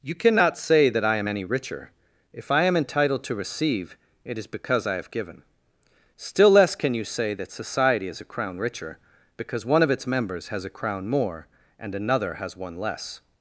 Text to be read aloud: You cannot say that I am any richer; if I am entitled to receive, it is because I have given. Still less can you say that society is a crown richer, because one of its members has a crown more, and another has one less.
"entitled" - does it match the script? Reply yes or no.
yes